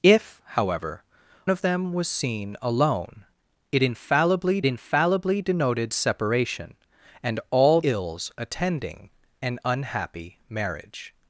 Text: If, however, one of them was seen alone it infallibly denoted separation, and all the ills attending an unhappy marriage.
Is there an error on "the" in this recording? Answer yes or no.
yes